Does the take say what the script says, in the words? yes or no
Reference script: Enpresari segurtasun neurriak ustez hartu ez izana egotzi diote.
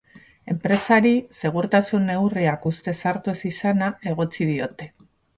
yes